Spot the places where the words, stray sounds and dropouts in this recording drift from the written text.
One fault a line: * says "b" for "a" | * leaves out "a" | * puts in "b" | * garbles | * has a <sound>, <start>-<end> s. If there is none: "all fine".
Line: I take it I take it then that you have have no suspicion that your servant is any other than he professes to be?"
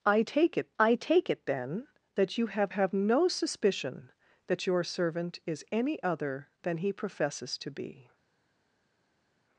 all fine